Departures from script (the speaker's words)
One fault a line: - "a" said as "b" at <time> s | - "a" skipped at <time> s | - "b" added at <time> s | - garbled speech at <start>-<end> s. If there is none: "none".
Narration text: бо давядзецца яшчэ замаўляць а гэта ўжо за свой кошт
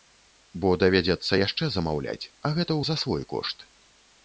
- "ўжо" skipped at 2.8 s